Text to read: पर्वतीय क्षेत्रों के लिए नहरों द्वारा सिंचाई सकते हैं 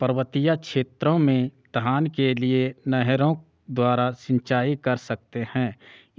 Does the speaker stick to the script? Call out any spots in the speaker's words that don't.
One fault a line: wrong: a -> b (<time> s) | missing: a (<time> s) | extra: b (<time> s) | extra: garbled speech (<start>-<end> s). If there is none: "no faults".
extra: में धान (1.2 s)
extra: कर (4.8 s)